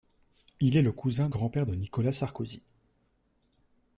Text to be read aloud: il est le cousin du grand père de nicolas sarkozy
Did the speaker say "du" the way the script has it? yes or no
no